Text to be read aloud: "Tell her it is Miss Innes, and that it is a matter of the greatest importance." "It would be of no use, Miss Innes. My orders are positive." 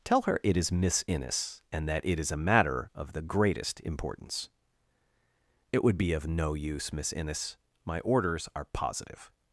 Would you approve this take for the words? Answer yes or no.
yes